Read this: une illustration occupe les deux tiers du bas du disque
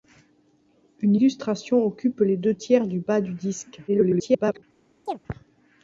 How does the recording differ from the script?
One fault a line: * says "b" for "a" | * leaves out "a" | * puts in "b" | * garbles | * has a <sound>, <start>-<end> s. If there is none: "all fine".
* garbles
* has a chirp, 5.1-5.2 s